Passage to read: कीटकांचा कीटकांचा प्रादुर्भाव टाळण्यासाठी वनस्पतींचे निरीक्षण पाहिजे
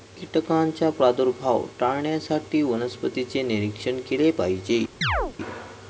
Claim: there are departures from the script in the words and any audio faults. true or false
true